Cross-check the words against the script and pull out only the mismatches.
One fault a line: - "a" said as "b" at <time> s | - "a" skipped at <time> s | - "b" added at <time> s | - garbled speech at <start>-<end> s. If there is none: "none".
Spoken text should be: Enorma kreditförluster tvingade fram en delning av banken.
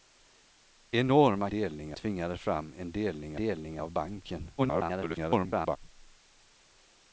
- "kreditförluster" said as "delning" at 1.5 s
- "delning" added at 3.4 s
- garbled speech at 4.6-5.8 s